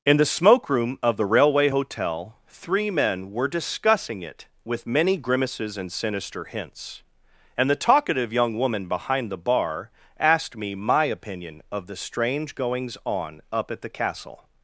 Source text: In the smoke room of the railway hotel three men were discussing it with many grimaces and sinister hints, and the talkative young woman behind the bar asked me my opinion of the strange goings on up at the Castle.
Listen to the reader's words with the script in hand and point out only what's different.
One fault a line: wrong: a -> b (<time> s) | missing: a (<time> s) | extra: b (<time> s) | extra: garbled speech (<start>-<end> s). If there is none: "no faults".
no faults